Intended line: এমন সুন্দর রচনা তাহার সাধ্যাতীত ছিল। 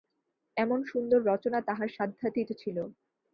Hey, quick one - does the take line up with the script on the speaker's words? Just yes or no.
yes